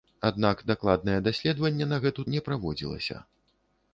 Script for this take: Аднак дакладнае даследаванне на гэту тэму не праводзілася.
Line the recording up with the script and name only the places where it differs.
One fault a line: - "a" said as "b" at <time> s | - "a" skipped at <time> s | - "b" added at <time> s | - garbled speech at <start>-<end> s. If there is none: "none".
- "тэму" skipped at 2.3 s